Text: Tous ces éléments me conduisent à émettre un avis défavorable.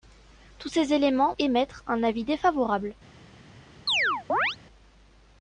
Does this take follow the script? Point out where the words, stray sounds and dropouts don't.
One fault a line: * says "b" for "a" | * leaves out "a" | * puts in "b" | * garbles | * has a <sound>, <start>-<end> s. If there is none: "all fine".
* leaves out "me conduisent à"
* has a chirp, 3.9-4.6 s